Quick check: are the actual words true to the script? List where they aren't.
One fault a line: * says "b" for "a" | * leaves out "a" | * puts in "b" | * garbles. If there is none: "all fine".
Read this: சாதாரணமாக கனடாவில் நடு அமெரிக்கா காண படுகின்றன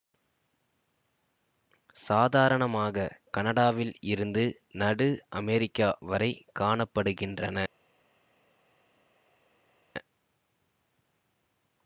* puts in "இருந்து"
* puts in "வரை"